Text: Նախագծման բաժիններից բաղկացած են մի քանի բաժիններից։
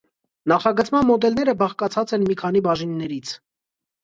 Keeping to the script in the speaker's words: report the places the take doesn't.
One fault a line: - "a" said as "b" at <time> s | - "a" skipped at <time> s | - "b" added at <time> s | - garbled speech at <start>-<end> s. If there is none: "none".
- "բաժիններից" said as "մոդելները" at 1.1 s